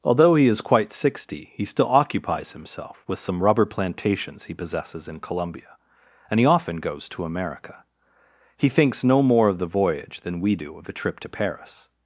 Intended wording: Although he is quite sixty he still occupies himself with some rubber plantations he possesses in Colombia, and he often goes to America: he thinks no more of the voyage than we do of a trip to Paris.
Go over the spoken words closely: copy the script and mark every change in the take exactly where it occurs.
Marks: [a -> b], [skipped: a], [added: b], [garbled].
Although he is quite sixty he still occupies himself with some rubber plantations he possesses in Colombia, and he often goes to America: he thinks no more of the voyage than we do of a trip to Paris.